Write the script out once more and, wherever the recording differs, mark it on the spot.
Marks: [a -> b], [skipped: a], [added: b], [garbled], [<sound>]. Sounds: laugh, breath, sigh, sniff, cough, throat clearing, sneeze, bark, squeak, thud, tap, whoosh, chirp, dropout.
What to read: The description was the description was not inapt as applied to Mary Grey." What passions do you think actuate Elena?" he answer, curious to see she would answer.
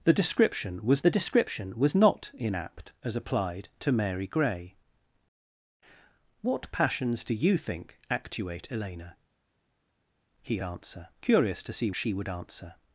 The description was the description was not inapt as applied to Mary Grey." What passions do you think actuate Elena?" he answer, curious to see she would answer.